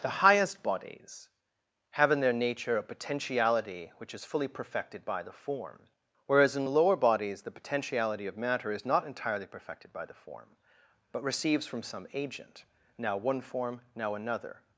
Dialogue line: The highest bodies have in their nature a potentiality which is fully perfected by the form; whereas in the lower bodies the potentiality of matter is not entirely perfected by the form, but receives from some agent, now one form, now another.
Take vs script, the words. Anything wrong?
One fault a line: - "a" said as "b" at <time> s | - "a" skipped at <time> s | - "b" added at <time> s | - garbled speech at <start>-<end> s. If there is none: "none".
none